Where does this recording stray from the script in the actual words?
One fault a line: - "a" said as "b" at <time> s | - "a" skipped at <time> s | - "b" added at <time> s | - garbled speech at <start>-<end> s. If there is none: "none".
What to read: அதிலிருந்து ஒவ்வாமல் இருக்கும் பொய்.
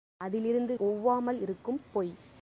none